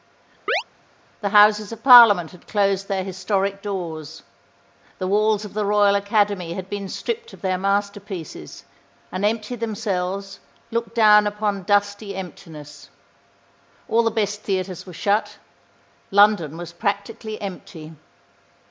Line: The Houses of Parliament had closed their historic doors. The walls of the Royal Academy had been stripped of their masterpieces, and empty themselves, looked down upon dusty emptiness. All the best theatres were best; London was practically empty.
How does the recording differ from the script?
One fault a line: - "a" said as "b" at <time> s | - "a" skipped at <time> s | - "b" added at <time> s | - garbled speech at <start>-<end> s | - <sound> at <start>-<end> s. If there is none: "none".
- chirp at 0.5-0.6 s
- "best" said as "shut" at 14.9 s